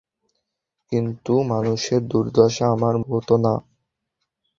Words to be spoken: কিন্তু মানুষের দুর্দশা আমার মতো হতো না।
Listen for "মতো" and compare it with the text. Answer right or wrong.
wrong